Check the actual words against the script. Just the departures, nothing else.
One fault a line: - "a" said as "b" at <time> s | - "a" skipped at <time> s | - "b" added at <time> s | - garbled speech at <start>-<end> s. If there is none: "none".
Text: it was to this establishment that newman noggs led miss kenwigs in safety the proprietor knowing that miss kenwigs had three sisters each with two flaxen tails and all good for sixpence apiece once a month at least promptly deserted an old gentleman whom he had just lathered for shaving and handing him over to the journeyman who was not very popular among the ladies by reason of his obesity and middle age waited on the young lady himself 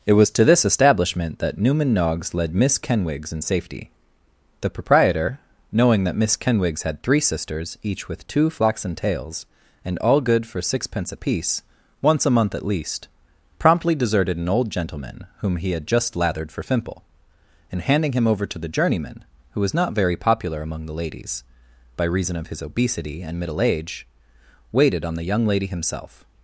- "shaving" said as "fimple" at 16.6 s